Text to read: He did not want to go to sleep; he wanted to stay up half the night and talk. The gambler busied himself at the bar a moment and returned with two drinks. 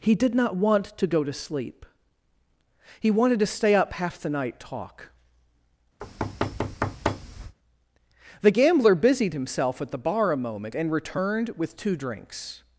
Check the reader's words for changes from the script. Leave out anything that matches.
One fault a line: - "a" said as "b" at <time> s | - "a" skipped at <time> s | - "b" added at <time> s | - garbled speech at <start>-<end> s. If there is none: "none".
- "and" skipped at 4.6 s